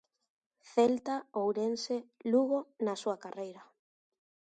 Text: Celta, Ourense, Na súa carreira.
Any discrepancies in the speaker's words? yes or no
yes